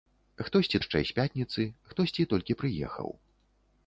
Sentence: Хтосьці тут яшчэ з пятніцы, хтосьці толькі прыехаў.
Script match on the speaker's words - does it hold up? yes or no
no